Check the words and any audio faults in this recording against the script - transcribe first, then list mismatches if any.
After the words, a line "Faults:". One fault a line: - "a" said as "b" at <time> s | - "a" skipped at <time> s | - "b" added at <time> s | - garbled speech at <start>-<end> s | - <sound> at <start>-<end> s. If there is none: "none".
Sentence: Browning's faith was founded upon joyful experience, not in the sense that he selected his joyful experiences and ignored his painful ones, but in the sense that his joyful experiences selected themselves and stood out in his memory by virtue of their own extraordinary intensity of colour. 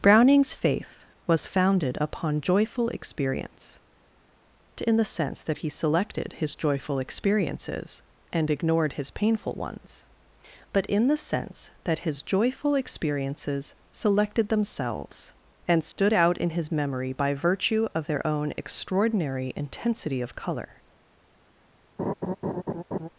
Browning's faith was founded upon joyful experience, in the sense that he selected his joyful experiences and ignored his painful ones, but in the sense that his joyful experiences selected themselves and stood out in his memory by virtue of their own extraordinary intensity of colour.
Faults:
- "not" skipped at 3.8 s
- dropout at 15.9-16.0 s
- laugh at 22.0-23.1 s